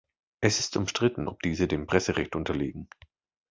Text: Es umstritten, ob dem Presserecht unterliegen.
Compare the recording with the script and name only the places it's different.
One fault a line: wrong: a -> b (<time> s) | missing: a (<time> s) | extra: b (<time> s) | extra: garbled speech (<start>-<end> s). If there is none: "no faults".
extra: ist (0.6 s)
extra: diese (1.4 s)